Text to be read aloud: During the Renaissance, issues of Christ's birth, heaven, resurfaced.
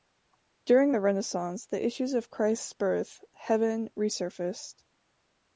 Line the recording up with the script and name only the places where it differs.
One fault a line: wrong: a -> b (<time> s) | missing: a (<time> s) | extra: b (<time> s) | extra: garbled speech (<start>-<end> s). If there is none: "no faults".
extra: the (1.7 s)